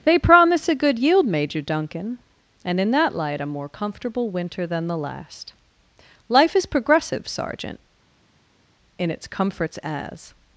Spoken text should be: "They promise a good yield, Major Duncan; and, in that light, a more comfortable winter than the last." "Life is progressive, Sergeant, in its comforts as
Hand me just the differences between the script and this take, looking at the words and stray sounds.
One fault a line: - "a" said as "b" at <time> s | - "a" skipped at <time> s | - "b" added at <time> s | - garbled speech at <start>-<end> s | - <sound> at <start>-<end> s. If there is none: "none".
none